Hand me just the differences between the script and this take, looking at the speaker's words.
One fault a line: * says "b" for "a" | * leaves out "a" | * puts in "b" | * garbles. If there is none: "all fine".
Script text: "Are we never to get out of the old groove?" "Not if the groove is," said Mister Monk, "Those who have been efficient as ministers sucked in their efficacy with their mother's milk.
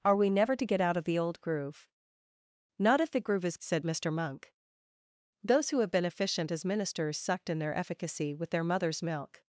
all fine